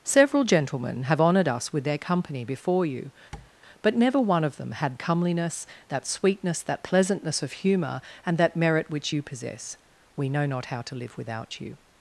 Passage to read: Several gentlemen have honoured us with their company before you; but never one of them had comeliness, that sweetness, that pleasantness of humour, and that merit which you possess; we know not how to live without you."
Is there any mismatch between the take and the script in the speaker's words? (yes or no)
no